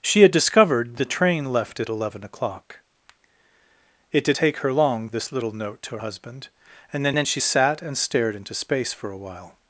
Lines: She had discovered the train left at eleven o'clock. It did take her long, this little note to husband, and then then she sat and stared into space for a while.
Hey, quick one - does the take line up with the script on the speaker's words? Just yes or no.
yes